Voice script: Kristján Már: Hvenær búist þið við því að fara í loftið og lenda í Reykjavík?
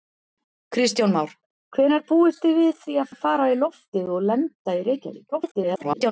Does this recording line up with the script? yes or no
no